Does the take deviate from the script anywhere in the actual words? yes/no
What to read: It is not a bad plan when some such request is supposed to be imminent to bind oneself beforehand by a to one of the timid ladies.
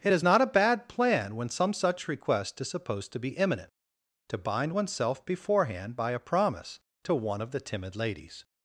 yes